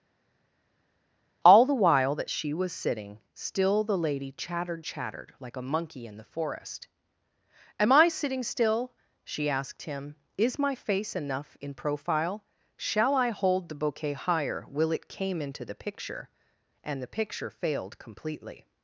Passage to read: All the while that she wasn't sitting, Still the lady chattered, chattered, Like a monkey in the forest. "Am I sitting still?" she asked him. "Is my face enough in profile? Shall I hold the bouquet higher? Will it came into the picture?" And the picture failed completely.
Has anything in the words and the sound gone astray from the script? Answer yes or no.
yes